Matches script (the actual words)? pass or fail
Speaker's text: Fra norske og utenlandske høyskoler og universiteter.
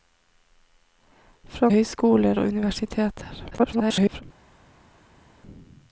fail